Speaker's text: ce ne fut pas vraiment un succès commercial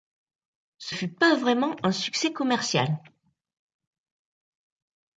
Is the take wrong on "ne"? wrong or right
wrong